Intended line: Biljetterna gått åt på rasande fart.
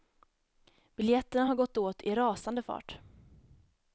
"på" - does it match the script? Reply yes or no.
no